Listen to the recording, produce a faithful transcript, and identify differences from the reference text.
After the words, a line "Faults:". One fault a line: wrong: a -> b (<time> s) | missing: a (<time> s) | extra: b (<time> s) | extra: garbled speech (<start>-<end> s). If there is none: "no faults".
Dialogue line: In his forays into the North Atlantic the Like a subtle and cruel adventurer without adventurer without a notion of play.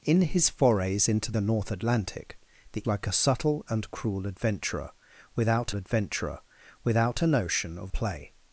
In his forays into the North Atlantic the Like a subtle and cruel adventurer without adventurer without a notion of play.
Faults:
no faults